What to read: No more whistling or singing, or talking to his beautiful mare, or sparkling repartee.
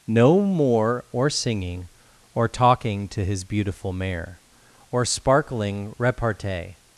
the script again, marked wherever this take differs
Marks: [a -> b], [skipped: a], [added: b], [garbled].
No more [skipped: whistling] or singing, or talking to his beautiful mare, or sparkling repartee.